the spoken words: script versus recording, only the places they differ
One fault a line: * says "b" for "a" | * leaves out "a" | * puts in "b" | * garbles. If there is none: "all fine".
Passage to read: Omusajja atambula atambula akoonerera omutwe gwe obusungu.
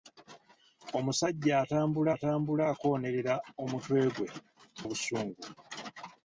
all fine